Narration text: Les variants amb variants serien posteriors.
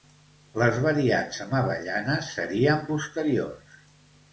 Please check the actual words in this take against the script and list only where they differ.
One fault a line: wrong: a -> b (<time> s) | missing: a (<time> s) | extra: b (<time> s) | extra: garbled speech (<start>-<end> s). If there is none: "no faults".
wrong: variants -> avellanes (1.6 s)